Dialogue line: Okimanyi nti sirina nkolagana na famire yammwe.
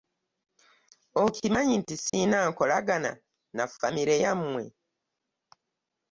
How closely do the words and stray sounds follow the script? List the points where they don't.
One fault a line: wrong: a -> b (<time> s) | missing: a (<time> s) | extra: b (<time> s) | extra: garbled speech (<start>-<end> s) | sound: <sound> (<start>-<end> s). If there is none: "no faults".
sound: dropout (2.1-2.1 s)